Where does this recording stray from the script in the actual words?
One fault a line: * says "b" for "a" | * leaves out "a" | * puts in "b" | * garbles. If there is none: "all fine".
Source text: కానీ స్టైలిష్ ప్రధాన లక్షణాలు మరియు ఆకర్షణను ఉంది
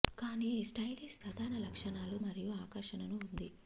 all fine